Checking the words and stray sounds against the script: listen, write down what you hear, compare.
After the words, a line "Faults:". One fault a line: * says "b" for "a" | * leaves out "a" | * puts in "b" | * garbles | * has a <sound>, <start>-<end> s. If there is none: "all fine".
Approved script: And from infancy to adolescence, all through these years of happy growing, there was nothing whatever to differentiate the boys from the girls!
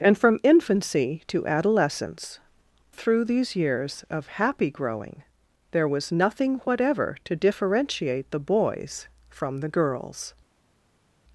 And from infancy to adolescence, through these years of happy growing, there was nothing whatever to differentiate the boys from the girls!
Faults:
* leaves out "all"